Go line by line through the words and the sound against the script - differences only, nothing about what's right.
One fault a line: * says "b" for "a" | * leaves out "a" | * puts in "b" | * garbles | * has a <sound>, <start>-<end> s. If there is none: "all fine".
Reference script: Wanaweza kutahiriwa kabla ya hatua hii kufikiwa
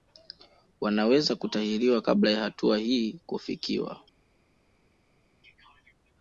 all fine